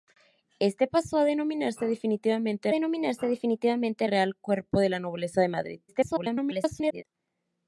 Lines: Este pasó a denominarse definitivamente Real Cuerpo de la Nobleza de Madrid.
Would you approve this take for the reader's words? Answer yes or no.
no